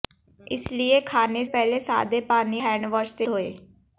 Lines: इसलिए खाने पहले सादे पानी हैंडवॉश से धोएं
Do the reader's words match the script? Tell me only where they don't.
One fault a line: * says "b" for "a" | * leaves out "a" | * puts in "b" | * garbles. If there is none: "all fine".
all fine